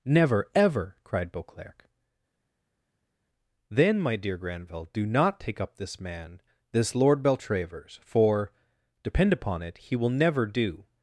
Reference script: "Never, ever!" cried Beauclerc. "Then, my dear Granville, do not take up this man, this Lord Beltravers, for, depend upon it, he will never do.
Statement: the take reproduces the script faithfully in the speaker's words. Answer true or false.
true